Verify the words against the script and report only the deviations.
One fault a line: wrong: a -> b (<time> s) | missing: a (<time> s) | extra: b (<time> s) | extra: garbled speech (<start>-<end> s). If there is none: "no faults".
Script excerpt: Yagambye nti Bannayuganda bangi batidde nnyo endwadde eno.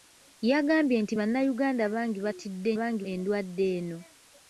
wrong: nnyo -> bangi (2.8 s)